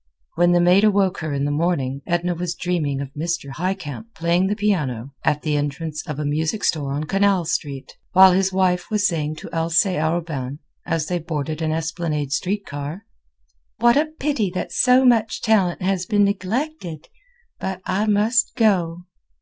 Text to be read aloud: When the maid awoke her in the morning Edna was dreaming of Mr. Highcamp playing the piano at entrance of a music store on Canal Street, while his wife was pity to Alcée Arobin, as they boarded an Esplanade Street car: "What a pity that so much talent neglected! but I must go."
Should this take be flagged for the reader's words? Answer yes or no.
yes